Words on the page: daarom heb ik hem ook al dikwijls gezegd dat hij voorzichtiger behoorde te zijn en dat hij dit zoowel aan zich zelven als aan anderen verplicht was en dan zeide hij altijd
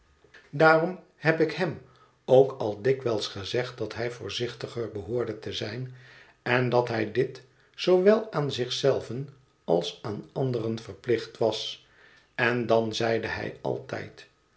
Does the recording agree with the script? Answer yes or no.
yes